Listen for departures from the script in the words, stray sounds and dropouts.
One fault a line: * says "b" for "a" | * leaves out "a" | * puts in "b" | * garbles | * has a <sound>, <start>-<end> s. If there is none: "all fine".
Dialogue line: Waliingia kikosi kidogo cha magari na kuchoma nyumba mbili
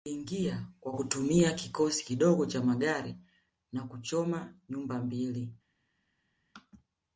* puts in "kwa kutumia"